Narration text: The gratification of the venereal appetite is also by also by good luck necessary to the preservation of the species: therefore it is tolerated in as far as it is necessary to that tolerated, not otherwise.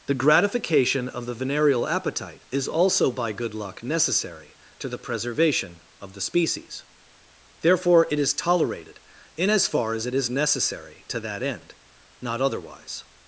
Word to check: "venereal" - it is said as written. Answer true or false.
true